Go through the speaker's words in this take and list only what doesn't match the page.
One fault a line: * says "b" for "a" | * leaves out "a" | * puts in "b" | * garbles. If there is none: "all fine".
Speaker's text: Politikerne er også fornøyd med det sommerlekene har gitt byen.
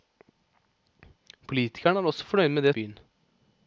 * leaves out "sommerlekene har gitt"